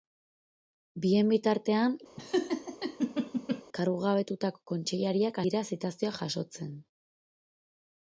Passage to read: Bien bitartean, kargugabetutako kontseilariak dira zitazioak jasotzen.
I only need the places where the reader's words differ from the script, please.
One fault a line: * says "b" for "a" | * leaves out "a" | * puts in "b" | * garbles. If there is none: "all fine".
all fine